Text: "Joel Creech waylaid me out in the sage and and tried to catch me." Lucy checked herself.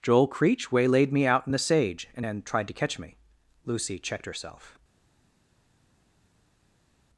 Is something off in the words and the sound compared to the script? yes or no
yes